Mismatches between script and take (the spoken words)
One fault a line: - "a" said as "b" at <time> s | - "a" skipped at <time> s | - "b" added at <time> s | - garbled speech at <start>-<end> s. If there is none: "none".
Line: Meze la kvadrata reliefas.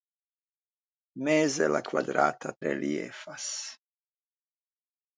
none